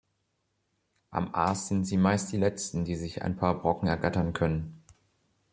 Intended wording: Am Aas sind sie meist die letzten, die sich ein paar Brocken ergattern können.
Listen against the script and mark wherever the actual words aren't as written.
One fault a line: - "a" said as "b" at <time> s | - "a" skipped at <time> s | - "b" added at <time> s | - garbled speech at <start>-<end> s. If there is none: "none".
none